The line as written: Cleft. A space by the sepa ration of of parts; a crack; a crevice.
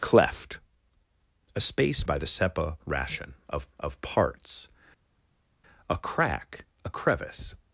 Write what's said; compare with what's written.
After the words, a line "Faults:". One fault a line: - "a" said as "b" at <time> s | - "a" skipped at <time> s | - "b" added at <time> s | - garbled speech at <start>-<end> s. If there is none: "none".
Cleft. A space by the sepa ration of of parts; a crack; a crevice.
Faults:
none